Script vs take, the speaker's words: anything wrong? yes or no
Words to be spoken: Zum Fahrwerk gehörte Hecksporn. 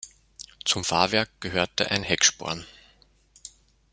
yes